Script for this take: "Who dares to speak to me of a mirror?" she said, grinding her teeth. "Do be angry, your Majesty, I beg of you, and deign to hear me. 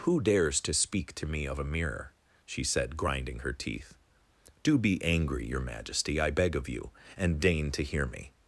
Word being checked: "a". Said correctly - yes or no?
yes